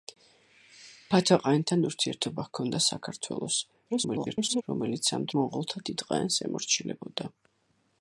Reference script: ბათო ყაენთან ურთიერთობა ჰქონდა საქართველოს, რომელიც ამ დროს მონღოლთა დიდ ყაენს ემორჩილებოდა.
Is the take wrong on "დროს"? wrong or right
wrong